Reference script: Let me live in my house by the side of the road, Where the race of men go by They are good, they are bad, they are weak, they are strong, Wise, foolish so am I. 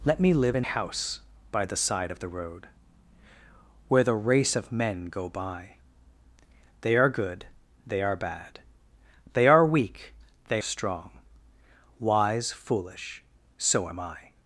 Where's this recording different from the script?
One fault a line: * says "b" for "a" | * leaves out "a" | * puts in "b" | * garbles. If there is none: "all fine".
* leaves out "my"
* leaves out "are"